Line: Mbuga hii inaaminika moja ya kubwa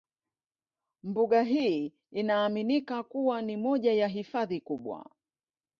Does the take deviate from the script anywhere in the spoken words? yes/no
yes